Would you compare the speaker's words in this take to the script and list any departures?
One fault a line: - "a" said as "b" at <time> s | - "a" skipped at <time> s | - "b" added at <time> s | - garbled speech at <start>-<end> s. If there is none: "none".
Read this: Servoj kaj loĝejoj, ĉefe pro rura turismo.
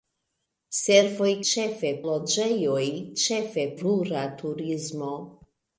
- "kaj" said as "ĉefe" at 1.5 s
- "pro" skipped at 3.7 s